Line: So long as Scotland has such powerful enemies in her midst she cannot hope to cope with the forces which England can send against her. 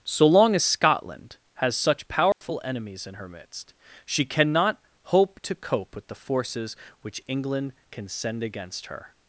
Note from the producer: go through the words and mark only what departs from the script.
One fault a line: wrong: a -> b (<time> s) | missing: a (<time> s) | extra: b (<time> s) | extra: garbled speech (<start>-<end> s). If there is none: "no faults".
no faults